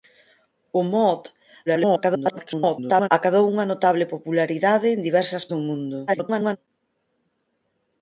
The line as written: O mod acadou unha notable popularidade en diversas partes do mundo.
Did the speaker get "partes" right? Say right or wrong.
wrong